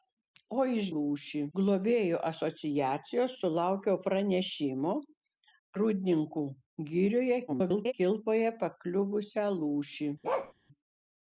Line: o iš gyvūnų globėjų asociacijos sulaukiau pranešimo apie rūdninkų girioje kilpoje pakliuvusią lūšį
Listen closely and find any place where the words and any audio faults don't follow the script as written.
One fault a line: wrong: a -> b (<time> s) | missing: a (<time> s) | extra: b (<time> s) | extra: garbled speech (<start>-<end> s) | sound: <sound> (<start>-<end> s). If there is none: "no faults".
wrong: gyvūnų -> lūšį (1.0 s)
missing: apie (4.9 s)
extra: garbled speech (7.5-7.9 s)
sound: bark (10.2-10.5 s)